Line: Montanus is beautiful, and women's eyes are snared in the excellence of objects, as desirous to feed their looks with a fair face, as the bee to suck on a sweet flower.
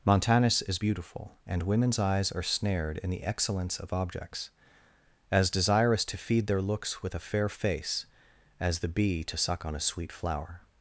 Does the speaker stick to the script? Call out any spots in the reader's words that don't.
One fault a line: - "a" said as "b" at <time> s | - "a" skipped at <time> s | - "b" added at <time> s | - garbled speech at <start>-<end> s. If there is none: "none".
none